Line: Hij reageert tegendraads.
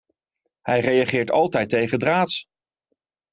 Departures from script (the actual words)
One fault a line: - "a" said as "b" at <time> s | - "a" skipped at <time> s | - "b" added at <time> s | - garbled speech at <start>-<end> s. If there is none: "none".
- "altijd" added at 1.3 s